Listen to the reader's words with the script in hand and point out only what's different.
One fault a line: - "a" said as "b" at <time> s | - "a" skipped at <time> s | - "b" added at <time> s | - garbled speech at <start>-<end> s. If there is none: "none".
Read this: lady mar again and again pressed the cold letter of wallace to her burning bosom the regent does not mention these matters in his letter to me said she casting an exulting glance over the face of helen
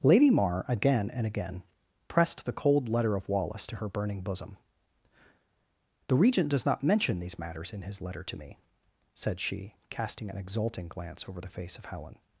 none